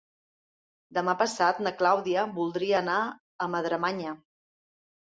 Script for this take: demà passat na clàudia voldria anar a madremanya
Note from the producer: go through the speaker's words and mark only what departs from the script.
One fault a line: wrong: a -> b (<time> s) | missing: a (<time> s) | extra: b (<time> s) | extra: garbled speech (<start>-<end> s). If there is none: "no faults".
no faults